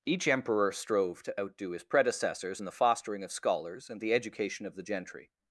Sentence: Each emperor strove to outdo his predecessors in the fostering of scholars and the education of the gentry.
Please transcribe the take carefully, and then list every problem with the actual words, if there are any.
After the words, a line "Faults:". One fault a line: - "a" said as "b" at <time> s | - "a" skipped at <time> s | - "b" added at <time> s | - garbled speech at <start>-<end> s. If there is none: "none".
Each emperor strove to outdo his predecessors in the fostering of scholars and the education of the gentry.
Faults:
none